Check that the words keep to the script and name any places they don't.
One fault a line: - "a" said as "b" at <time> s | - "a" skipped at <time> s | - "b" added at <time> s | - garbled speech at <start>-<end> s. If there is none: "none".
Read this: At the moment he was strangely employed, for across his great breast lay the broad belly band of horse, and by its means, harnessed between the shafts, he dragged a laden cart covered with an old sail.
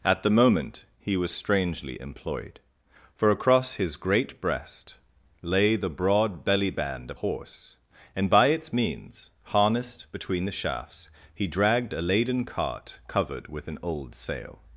none